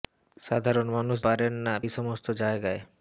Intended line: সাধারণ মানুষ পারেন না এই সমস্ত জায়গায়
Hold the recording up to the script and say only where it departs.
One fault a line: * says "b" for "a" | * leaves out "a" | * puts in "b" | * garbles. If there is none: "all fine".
all fine